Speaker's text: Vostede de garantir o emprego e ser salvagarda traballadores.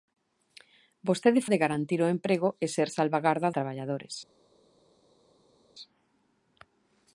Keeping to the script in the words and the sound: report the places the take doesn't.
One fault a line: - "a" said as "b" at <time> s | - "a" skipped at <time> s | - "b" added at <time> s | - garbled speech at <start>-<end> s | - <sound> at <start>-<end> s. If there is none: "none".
none